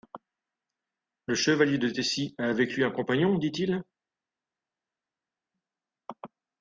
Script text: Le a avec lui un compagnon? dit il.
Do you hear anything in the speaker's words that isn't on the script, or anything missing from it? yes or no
yes